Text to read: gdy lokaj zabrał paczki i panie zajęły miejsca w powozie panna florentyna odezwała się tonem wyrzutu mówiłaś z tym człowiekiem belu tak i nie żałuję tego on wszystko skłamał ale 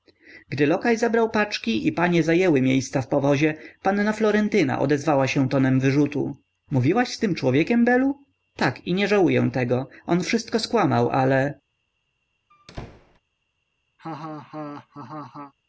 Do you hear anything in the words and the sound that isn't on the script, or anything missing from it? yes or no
yes